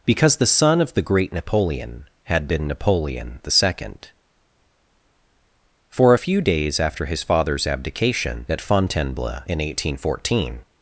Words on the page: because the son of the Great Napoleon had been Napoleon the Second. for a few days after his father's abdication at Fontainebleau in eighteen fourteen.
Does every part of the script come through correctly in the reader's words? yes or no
yes